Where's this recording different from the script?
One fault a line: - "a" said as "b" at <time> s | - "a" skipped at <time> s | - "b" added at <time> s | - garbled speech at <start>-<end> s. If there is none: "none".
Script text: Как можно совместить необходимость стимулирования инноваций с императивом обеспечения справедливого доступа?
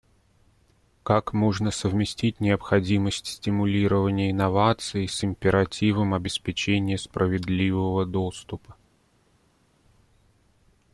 none